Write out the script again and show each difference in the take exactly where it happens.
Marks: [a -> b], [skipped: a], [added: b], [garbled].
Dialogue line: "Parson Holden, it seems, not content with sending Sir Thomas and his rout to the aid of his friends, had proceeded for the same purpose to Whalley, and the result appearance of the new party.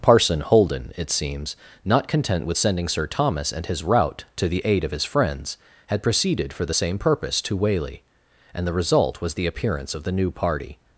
"Parson Holden, it seems, not content with sending Sir Thomas and his rout to the aid of his friends, had proceeded for the same purpose to Whalley, and the result [added: was the] appearance of the new party.